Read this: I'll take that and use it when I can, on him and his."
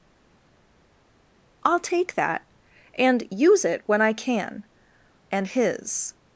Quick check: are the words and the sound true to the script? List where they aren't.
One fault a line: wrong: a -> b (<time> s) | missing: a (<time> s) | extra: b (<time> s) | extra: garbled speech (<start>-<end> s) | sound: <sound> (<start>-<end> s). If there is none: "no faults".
missing: on him (4.6 s)